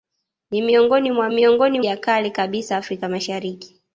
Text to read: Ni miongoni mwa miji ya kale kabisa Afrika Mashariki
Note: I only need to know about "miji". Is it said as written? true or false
false